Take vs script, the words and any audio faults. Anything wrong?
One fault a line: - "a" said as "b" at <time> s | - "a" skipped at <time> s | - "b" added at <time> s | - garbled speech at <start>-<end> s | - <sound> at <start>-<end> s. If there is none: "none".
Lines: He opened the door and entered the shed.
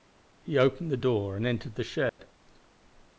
- dropout at 2.1-2.2 s